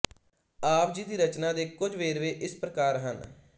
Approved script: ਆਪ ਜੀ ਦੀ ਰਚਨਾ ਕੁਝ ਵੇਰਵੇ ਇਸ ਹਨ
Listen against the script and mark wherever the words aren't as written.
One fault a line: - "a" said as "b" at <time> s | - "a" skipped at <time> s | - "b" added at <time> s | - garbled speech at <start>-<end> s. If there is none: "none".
- "ਦੇ" added at 1.5 s
- "ਪ੍ਰਕਾਰ" added at 2.5 s